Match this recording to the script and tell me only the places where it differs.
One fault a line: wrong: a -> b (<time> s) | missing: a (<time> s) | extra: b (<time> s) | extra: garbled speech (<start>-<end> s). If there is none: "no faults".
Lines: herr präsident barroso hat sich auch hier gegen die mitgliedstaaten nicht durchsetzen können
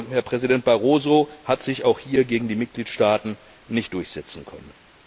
no faults